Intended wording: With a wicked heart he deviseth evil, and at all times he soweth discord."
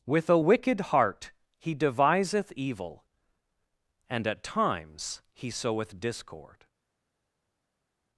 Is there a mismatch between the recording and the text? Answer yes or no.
yes